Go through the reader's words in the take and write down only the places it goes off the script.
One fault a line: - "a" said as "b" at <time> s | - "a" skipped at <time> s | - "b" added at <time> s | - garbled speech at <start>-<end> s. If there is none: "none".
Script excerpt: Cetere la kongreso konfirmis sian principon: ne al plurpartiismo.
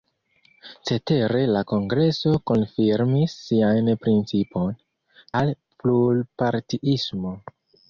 - "ne" skipped at 4.7 s